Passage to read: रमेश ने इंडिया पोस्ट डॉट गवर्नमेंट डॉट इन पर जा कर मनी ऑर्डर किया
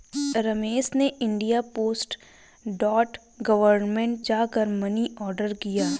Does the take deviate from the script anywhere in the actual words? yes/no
yes